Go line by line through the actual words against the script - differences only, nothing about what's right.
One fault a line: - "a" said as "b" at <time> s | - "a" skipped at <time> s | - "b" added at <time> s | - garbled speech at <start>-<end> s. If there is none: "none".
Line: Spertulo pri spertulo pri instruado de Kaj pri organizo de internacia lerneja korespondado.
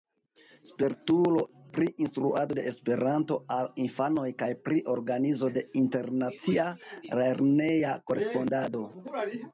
- "spertulo pri instruado de" said as "instruado de Esperanto al infanoj" at 2.0 s